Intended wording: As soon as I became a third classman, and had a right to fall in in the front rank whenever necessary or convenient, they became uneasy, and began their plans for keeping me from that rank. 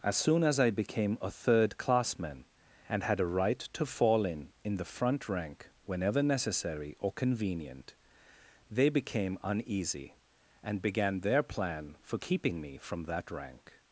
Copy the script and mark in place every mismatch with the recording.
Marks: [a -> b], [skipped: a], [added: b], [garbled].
As soon as I became a third classman, and had a right to fall in in the front rank whenever necessary or convenient, they became uneasy, and began their [plans -> plan] for keeping me from that rank.